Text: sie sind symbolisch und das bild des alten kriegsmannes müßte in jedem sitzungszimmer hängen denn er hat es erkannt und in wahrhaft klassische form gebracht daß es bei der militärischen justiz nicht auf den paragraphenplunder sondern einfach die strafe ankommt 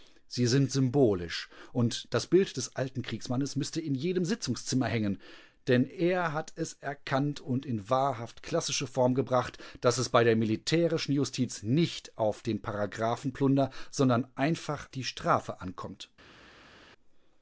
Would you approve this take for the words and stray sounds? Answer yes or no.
yes